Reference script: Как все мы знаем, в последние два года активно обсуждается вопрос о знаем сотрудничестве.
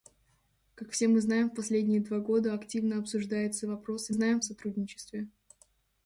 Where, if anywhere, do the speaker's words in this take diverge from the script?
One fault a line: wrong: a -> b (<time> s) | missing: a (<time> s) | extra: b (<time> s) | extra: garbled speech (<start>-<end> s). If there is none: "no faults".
no faults